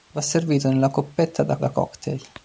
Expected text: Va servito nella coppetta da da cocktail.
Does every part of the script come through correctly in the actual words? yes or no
yes